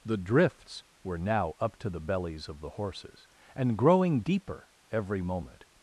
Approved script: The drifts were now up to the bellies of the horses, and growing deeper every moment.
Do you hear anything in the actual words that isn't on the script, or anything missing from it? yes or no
no